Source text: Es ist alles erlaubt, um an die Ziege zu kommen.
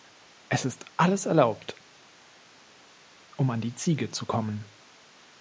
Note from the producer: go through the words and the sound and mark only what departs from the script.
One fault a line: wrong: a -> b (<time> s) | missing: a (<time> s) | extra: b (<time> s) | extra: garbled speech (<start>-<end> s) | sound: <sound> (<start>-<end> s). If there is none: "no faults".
no faults